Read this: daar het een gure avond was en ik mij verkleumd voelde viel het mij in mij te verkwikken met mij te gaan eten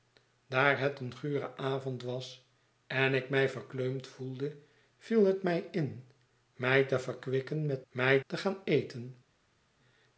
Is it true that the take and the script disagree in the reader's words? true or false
false